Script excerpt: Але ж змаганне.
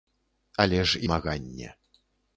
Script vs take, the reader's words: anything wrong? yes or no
no